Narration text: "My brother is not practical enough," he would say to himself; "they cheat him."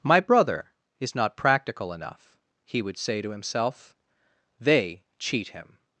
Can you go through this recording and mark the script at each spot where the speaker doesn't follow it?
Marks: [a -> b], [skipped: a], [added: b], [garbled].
"My brother is not practical enough," he would say to himself; "they cheat him."